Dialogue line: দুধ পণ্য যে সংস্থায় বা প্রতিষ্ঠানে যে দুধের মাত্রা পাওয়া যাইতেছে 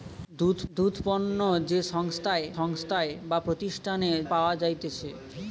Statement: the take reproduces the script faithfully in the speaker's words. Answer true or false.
false